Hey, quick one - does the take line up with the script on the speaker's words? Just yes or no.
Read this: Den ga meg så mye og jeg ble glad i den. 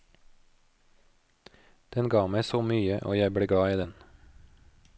yes